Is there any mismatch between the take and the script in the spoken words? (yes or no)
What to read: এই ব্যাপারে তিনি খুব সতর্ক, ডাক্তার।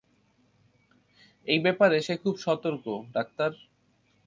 yes